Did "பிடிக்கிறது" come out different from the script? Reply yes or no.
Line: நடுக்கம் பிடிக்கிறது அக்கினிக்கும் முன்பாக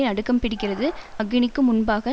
no